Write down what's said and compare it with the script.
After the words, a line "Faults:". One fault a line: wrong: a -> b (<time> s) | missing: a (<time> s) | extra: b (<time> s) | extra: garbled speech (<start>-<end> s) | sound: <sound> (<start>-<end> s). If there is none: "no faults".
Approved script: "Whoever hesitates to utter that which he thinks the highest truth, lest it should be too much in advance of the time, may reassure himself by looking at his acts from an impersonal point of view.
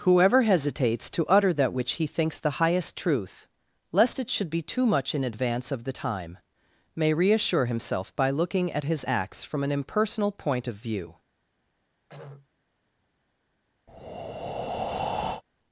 "Whoever hesitates to utter that which he thinks the highest truth, lest it should be too much in advance of the time, may reassure himself by looking at his acts from an impersonal point of view.
Faults:
sound: throat clearing (12.1-12.5 s)
sound: breath (13.9-15.4 s)